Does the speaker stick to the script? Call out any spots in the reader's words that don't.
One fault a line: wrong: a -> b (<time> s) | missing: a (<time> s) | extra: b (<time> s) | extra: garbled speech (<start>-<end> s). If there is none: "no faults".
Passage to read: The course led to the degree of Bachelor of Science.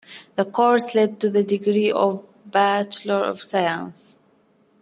no faults